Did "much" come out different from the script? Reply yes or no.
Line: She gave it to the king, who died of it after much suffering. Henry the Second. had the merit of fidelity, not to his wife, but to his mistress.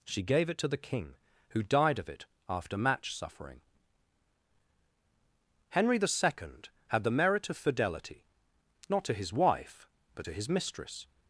yes